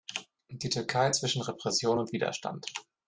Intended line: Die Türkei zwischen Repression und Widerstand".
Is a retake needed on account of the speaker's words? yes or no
no